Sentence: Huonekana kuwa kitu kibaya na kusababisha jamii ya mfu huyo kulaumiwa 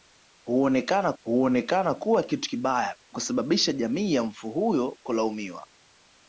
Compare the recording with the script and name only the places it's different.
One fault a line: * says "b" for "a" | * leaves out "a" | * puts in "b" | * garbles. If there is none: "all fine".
* puts in "huonekana"
* leaves out "na"